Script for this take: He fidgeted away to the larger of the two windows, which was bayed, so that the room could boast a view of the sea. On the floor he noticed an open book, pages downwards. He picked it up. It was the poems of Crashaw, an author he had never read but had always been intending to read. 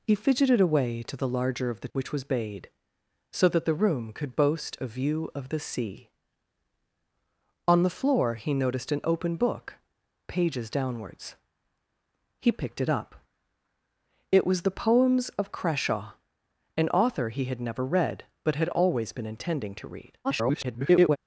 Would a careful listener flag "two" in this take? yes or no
yes